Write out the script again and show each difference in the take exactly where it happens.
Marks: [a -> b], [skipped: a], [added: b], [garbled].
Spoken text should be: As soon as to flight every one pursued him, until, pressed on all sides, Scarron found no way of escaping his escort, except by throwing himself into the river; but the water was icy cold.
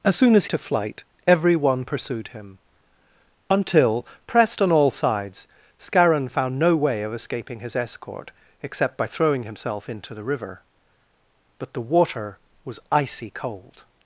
As soon as to flight every one pursued him, until, pressed on all sides, Scarron found no way of escaping his escort, except by throwing himself into the river; but the water was icy cold.